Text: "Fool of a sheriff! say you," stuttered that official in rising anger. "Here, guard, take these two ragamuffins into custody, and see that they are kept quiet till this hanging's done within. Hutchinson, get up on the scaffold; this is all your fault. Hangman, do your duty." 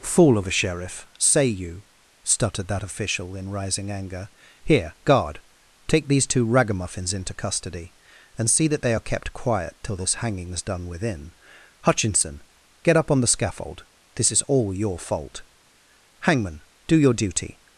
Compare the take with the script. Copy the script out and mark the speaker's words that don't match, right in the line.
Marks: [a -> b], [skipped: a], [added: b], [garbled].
"Fool of a sheriff! say you," stuttered that official in rising anger. "Here, guard, take these two ragamuffins into custody, and see that they are kept quiet till this hanging's done within. Hutchinson, get up on the scaffold; this is all your fault. Hangman, do your duty."